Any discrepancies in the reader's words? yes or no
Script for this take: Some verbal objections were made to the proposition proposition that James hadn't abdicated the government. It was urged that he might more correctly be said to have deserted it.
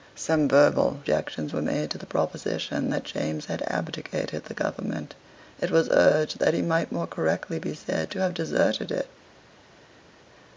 yes